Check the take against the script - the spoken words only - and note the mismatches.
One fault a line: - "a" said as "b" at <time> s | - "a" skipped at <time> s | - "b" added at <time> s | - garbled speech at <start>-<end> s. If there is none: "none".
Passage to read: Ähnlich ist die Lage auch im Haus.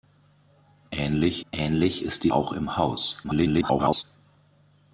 - "ähnlich" added at 1.5 s
- "Lage" skipped at 2.3 s
- garbled speech at 3.2-4.0 s